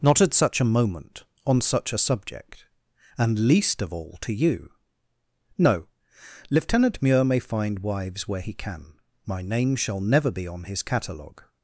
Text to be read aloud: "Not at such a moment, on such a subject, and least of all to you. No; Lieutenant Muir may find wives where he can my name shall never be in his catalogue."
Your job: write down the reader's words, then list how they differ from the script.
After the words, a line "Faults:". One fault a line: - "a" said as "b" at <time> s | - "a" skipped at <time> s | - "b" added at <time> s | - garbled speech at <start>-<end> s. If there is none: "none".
"Not at such a moment, on such a subject, and least of all to you. No; Lieutenant Muir may find wives where he can my name shall never be on his catalogue."
Faults:
- "in" said as "on" at 10.5 s